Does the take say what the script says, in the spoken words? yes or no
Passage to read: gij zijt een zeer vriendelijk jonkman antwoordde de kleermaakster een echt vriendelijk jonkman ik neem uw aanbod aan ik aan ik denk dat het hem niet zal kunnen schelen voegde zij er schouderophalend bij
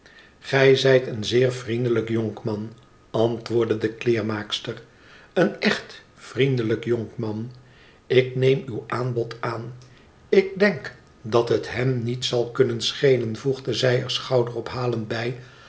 no